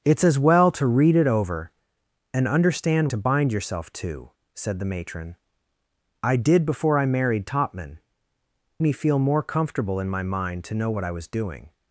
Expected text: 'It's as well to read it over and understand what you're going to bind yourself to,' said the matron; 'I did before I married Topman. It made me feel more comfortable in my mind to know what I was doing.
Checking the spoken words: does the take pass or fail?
fail